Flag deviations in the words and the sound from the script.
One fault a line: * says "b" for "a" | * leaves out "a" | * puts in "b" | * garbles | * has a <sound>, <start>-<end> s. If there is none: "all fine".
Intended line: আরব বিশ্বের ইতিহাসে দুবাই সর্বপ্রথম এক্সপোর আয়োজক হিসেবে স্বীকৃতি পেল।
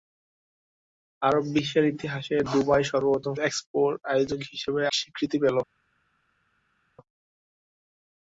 all fine